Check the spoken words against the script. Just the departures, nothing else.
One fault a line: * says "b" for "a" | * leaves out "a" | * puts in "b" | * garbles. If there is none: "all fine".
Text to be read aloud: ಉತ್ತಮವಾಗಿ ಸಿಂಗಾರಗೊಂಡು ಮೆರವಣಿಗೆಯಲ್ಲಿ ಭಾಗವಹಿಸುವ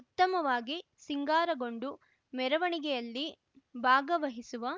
all fine